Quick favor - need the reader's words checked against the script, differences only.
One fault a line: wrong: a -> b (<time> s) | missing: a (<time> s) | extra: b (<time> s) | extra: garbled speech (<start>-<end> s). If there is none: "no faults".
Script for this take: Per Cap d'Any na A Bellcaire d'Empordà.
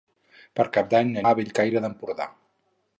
no faults